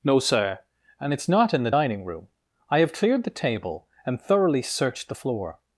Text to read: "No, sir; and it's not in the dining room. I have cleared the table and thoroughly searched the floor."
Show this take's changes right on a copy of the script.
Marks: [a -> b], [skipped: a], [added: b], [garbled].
"No, sir; and it's not in the dining room. I have cleared the table and thoroughly searched the floor."